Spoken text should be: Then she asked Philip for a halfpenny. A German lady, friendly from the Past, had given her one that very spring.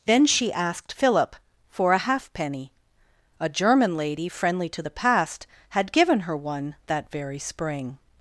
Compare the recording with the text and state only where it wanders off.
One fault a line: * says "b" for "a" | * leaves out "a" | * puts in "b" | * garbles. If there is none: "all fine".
* says "to" for "from"